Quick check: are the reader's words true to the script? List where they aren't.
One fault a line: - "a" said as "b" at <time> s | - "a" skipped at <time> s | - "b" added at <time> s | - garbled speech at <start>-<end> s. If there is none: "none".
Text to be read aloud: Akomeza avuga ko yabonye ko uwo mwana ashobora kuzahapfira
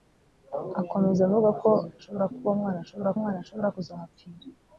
- "yabonye" said as "ashobora" at 2.0 s
- "mwana ashobora" added at 3.2 s